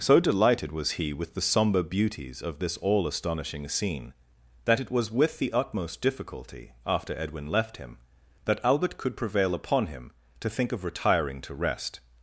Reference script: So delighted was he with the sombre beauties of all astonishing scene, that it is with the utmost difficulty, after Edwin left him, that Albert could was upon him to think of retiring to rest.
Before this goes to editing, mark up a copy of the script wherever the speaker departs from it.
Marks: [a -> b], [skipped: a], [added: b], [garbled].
So delighted was he with the sombre beauties of [added: this] all astonishing scene, that it [is -> was] with the utmost difficulty, after Edwin left him, that Albert could [was -> prevail] upon him to think of retiring to rest.